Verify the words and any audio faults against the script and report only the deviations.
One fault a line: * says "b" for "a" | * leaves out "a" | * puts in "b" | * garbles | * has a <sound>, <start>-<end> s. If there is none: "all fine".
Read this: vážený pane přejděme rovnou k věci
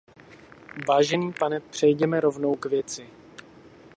all fine